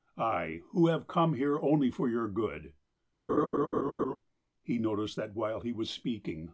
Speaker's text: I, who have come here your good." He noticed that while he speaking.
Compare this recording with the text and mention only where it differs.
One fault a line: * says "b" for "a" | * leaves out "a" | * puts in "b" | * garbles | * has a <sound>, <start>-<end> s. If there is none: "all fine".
* puts in "only for"
* has a laugh, 3.3-4.2 s
* puts in "was"